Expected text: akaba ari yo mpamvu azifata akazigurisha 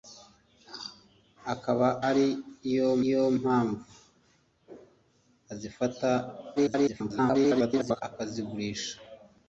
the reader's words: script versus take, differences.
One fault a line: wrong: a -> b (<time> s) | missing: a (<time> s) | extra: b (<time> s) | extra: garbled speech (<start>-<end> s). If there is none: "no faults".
extra: yo (3.1 s)
extra: garbled speech (6.6-8.0 s)